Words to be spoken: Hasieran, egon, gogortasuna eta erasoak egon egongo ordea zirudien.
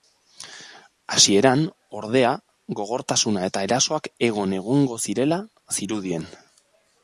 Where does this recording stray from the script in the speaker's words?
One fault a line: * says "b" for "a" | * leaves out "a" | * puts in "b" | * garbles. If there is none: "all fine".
* says "ordea" for "egon"
* says "zirela" for "ordea"